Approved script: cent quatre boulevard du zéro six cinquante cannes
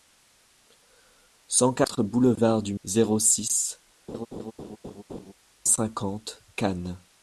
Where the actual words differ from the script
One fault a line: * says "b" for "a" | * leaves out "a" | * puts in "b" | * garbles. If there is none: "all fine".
all fine